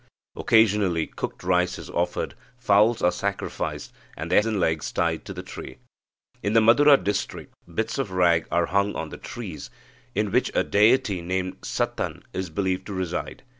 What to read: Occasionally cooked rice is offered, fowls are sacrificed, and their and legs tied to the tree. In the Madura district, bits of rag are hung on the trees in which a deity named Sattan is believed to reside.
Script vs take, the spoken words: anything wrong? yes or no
no